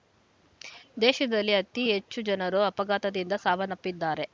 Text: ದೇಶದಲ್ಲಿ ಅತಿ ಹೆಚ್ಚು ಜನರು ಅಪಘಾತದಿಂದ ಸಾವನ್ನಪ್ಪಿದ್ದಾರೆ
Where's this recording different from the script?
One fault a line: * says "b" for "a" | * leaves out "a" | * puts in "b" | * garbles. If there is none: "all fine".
all fine